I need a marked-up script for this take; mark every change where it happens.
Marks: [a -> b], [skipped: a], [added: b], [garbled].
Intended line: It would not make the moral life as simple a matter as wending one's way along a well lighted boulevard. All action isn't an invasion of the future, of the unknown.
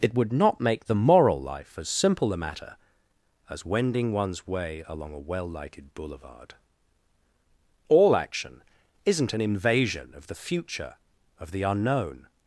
It would not make the moral life as simple a matter as wending one's way along a well lighted boulevard. All action isn't an invasion of the future, of the unknown.